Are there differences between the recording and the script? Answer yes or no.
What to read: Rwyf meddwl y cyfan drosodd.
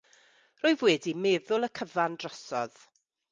yes